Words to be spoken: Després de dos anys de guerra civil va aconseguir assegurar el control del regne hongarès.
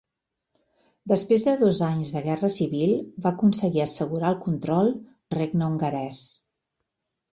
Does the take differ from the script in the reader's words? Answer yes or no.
yes